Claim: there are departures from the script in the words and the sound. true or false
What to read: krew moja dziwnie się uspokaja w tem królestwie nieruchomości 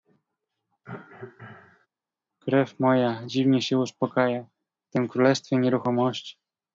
true